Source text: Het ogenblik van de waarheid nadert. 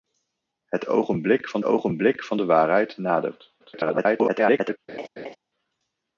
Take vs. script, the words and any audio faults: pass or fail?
fail